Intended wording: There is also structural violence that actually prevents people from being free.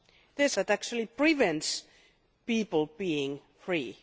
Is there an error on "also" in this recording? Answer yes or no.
yes